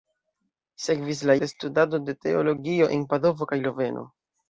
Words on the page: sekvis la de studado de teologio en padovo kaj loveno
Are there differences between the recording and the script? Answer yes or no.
no